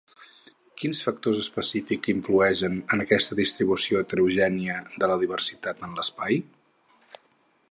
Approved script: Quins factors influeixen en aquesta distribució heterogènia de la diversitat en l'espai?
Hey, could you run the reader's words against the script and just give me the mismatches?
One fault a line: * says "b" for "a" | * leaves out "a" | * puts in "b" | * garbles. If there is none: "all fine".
* puts in "específics"